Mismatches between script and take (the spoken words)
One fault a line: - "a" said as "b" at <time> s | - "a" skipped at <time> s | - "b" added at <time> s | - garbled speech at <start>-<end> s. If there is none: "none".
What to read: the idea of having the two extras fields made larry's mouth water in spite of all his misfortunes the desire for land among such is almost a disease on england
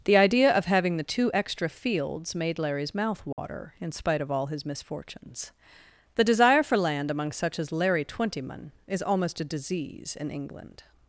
- "extras" said as "extra" at 1.3 s
- "as larry twentyman" added at 7.6 s
- "on" said as "in" at 10.2 s